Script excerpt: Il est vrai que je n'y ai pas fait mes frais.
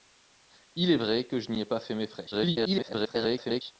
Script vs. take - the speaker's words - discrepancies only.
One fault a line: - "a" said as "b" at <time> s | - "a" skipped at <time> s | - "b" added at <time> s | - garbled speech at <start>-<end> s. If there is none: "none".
- garbled speech at 2.3-3.6 s